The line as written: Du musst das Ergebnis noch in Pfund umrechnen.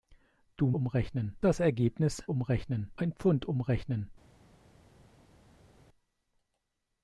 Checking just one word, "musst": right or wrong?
wrong